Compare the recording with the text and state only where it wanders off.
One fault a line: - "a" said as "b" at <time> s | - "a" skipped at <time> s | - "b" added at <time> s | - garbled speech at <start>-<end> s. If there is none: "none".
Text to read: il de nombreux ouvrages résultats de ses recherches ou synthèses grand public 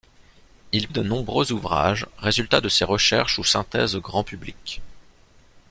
none